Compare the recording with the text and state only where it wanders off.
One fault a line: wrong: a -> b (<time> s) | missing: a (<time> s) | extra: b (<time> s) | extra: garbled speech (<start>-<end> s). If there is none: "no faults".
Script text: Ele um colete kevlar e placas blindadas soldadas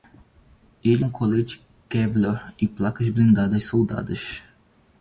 no faults